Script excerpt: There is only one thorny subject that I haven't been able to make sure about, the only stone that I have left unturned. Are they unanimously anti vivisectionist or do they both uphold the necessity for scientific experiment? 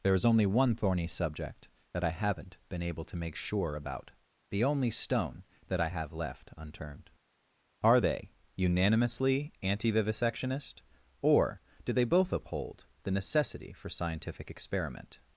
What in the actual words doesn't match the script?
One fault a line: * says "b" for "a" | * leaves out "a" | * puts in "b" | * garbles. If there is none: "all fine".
all fine